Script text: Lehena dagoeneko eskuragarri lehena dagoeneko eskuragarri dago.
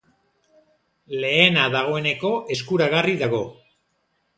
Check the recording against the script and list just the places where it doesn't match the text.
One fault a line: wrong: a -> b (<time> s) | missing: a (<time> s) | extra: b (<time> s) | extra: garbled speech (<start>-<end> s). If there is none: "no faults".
missing: lehena dagoeneko eskuragarri (3.2 s)